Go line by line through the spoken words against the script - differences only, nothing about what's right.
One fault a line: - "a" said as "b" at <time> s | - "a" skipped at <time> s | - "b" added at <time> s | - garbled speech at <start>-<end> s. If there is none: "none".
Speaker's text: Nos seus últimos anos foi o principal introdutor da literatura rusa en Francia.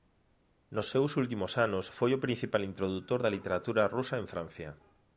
none